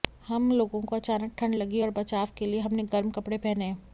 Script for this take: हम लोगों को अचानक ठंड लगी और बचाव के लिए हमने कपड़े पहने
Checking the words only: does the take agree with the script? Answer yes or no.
no